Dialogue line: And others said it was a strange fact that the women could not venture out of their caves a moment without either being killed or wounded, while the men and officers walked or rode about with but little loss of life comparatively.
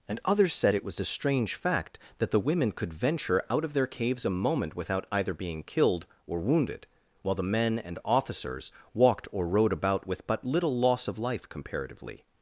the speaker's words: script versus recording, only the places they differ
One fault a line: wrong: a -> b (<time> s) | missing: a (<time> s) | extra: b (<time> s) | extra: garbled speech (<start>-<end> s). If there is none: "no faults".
missing: not (2.9 s)